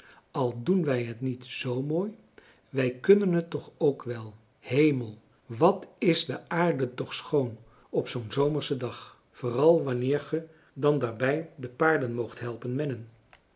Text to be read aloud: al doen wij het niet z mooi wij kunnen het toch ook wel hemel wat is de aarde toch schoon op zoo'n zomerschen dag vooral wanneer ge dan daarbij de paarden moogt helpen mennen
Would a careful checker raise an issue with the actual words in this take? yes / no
no